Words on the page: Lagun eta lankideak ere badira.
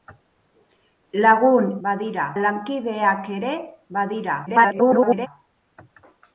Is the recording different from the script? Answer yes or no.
yes